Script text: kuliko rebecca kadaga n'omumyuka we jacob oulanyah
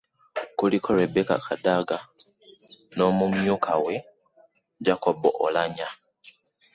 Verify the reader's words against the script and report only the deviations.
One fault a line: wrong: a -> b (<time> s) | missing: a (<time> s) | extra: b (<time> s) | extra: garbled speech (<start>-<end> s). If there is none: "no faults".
no faults